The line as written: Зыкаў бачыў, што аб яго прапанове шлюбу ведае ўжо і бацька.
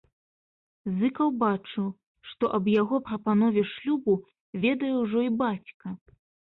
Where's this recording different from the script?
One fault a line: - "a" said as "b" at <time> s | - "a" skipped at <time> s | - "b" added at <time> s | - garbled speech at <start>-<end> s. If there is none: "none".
none